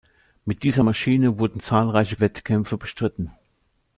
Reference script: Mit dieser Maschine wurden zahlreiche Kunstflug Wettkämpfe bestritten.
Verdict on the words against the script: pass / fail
fail